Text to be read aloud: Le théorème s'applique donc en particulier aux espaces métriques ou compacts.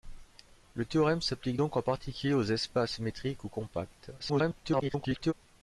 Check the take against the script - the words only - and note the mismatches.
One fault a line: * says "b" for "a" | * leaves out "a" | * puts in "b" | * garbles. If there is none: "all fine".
* garbles